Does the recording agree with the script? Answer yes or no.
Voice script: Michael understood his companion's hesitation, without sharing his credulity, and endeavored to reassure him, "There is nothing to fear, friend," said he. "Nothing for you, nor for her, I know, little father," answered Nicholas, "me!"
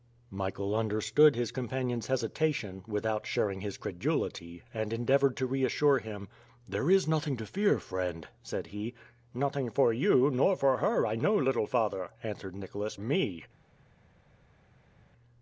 yes